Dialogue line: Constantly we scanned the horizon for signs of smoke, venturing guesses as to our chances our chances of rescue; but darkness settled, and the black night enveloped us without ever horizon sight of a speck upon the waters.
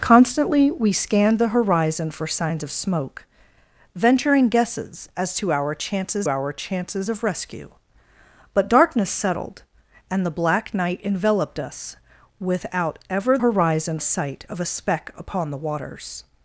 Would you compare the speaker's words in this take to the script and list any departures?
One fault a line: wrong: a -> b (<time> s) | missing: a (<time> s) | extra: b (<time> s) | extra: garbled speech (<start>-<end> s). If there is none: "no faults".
no faults